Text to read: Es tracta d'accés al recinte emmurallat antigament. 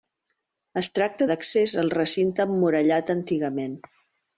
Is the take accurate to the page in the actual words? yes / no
yes